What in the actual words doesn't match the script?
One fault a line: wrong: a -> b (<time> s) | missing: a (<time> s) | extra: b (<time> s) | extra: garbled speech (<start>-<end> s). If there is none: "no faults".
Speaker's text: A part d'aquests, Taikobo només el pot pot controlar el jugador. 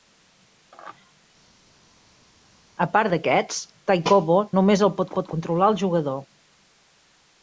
no faults